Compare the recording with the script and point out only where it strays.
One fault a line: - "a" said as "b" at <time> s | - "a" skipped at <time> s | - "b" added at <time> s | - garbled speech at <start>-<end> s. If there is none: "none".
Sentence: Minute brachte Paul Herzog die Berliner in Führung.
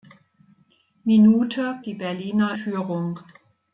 - "brachte Paul Herzog" skipped at 1.8 s
- "in" skipped at 2.6 s